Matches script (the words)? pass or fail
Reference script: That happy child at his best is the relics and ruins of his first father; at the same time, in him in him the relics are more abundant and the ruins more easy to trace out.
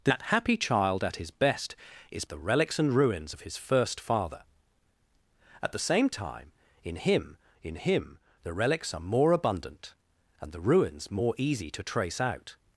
pass